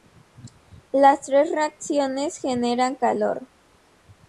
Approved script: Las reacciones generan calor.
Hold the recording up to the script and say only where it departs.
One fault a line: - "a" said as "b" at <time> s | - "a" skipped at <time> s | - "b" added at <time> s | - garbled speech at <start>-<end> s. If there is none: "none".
- "tres" added at 1.2 s